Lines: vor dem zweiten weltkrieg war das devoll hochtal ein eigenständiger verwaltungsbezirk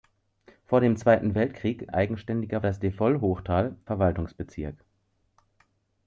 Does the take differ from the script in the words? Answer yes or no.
yes